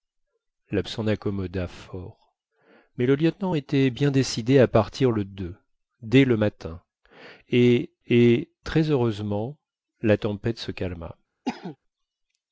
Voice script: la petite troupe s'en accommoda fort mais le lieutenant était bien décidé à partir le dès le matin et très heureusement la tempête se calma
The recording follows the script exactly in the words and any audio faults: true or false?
false